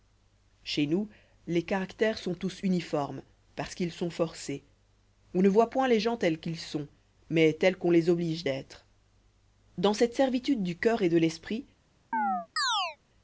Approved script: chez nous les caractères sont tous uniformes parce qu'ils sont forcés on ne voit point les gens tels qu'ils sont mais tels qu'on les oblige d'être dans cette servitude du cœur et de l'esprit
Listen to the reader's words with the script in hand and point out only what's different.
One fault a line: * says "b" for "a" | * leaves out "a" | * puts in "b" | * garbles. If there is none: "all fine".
all fine